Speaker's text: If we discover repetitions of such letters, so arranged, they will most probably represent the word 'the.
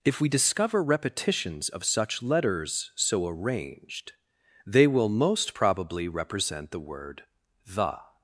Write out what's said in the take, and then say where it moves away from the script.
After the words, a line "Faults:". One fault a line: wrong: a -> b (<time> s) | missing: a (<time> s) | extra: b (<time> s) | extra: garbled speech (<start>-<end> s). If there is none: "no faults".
If we discover repetitions of such letters, so arranged, they will most probably represent the word 'the.
Faults:
no faults